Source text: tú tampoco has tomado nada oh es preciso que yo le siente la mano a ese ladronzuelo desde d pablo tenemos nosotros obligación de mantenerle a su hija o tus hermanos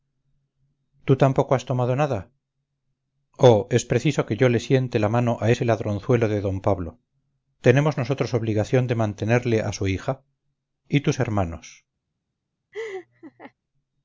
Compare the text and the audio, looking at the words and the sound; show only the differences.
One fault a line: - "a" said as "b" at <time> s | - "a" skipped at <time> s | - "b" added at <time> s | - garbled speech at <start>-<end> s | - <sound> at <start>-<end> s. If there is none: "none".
- "desde" said as "de" at 6.3 s
- "o" said as "y" at 10.9 s
- laugh at 12.7-13.5 s